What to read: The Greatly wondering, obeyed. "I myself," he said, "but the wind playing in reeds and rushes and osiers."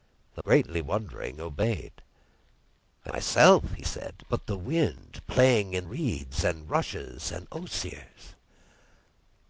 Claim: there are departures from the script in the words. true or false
false